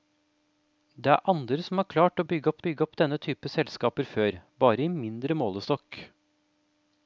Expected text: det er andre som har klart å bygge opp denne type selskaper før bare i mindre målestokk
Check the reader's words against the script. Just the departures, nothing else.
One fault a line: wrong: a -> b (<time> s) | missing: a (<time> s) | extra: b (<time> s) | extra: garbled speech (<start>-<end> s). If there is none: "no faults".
extra: bygge opp (2.6 s)